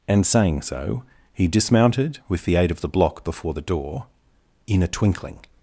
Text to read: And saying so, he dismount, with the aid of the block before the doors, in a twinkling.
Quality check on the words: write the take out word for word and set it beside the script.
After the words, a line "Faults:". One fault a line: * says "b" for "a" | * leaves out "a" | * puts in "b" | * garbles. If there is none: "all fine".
And saying so, he dismounted, with the aid of the block before the door, in a twinkling.
Faults:
* says "dismounted" for "dismount"
* says "door" for "doors"